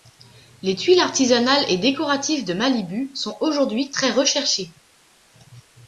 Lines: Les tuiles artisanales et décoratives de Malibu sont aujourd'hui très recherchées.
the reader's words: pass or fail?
pass